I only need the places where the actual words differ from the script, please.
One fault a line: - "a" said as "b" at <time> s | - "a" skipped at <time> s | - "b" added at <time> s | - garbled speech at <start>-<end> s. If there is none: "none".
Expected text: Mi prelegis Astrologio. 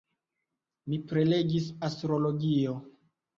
none